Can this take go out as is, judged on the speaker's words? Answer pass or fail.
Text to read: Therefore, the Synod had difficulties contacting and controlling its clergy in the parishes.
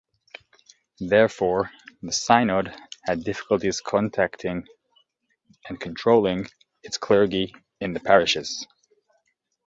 pass